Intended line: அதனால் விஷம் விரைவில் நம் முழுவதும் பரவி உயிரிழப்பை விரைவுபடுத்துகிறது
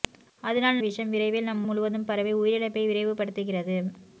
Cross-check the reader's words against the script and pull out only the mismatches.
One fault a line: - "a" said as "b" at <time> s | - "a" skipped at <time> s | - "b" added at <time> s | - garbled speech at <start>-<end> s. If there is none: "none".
none